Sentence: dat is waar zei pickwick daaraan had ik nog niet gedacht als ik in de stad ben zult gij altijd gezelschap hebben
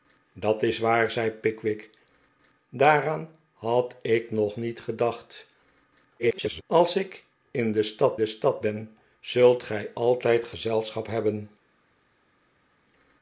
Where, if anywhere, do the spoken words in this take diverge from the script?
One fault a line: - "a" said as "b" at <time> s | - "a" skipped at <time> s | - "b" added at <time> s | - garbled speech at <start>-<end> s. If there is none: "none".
- garbled speech at 6.2-6.6 s
- "de stad" added at 8.2 s